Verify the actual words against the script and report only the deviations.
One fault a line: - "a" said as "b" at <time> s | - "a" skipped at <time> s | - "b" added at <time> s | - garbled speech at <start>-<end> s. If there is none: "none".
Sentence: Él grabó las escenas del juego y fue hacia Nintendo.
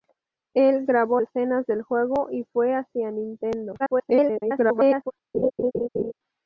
- "las" skipped at 1.2 s
- garbled speech at 3.8-5.1 s